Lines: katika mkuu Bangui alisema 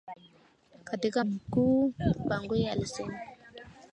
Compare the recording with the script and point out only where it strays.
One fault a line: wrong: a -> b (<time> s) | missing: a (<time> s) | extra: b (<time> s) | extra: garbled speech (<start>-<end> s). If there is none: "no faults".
no faults